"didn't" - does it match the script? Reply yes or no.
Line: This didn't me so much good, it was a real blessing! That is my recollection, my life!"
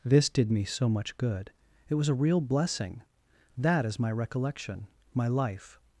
no